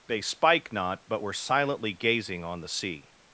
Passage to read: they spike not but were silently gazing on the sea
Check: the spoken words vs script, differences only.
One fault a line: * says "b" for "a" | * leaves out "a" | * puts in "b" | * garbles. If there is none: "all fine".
all fine